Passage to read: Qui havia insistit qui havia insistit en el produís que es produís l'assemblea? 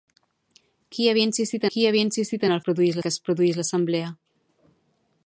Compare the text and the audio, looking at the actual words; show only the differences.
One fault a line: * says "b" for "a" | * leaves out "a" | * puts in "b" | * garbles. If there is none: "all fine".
all fine